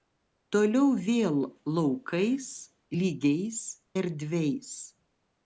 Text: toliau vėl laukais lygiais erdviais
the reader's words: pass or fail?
pass